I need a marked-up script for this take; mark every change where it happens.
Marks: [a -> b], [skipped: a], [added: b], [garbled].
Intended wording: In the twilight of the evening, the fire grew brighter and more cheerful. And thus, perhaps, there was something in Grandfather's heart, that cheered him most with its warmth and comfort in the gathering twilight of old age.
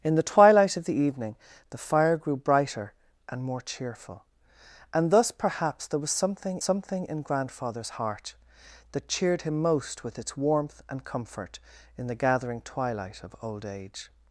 In the twilight of the evening, the fire grew brighter and more cheerful. And thus, perhaps, there was something [added: something] in Grandfather's heart, that cheered him most with its warmth and comfort in the gathering twilight of old age.